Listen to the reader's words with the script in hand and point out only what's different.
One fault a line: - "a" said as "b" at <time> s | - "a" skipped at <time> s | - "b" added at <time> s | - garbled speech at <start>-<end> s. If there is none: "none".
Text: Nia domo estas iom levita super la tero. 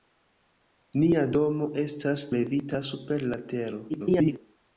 - "iom" skipped at 2.2 s
- garbled speech at 3.9-4.4 s